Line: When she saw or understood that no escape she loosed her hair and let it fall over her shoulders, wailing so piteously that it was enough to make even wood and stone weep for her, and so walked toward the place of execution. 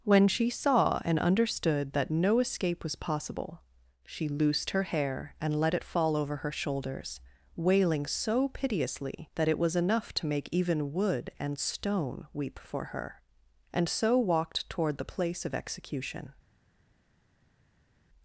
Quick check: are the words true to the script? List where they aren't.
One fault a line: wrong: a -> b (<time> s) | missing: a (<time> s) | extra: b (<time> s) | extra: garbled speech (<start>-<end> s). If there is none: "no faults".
wrong: or -> and (1.1 s)
extra: was possible (2.8 s)